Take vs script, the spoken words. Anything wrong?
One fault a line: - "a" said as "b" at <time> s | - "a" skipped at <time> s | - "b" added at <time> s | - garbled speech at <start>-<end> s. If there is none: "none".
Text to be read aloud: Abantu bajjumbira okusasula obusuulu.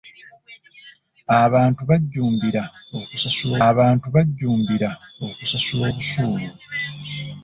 - "abantu bajjumbira okusasula" added at 3.7 s